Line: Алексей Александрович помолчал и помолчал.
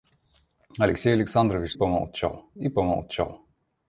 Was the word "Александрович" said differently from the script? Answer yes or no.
no